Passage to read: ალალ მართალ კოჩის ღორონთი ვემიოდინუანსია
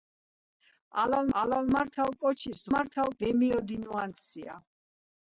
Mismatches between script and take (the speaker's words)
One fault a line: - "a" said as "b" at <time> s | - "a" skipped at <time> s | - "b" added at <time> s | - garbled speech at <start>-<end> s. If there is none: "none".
- "ალალ" added at 1.4 s
- "ღორონთი" said as "მართალ" at 2.7 s